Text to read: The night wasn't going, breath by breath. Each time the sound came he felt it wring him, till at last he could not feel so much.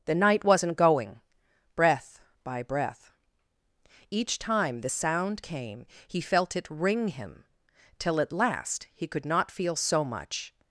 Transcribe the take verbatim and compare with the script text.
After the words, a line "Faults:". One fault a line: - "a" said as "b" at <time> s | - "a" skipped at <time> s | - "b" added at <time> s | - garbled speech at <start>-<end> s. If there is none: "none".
The night wasn't going, breath by breath. Each time the sound came he felt it wring him, till at last he could not feel so much.
Faults:
none